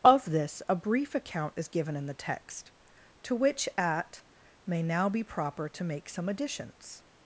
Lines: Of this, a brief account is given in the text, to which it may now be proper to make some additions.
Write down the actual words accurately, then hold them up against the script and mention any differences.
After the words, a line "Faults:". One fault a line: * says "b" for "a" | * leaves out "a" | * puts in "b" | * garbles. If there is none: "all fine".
Of this, a brief account is given in the text, to which at may now be proper to make some additions.
Faults:
* says "at" for "it"